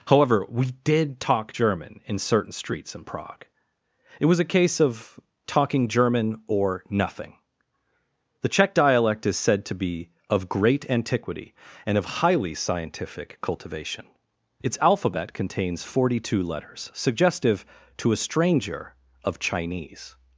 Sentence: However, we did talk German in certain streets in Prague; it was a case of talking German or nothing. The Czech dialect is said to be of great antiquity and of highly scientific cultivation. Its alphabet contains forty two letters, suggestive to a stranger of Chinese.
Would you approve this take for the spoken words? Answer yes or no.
yes